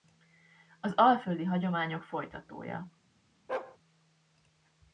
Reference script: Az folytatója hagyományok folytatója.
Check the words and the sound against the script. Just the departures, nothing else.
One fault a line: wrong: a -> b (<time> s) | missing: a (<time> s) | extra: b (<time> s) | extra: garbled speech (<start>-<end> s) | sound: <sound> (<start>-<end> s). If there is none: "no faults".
wrong: folytatója -> alföldi (0.9 s)
sound: bark (3.5-3.8 s)